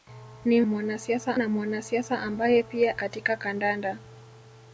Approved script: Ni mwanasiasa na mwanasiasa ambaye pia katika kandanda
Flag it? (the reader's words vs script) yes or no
no